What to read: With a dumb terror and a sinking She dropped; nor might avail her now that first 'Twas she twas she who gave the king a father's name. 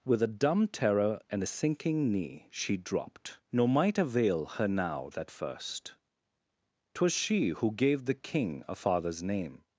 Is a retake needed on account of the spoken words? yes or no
yes